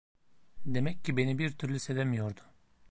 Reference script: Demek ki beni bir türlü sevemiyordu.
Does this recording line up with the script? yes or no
yes